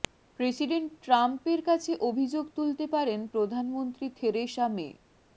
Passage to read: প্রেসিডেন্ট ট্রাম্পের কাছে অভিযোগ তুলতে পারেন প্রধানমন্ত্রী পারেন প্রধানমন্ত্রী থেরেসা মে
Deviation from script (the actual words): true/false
true